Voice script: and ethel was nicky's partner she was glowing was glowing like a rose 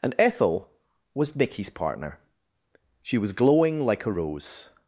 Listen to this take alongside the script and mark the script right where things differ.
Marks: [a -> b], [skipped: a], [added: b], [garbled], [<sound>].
and ethel was nicky's partner she was glowing [skipped: was glowing] like a rose